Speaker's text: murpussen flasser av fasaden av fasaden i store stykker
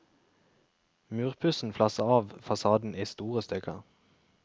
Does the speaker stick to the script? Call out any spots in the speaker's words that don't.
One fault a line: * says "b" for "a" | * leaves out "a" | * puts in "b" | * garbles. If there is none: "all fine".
* leaves out "av fasaden"